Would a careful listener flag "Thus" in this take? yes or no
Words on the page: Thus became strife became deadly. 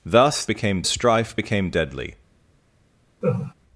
no